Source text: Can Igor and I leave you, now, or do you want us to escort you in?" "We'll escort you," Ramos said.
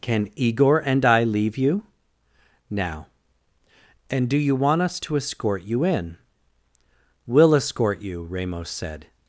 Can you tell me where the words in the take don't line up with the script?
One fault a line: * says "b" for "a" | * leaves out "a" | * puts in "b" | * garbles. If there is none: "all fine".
* says "and" for "or"